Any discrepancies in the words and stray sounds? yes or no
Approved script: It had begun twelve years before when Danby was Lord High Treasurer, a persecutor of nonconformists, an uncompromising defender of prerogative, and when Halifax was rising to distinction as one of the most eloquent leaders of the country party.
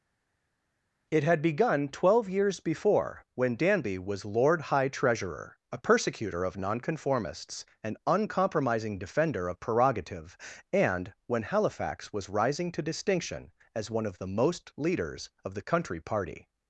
yes